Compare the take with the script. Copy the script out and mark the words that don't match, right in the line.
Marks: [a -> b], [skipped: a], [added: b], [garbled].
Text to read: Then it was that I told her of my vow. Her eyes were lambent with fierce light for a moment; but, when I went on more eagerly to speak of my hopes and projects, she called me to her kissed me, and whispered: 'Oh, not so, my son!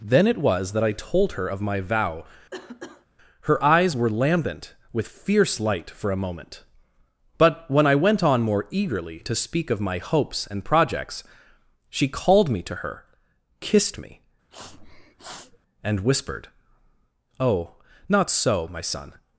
Then it was that I told her of my vow. Her eyes were lambent with fierce light for a moment; but, when I went on more eagerly to speak of my hopes and projects, she called me to her kissed me, and whispered: 'Oh, not so, my son!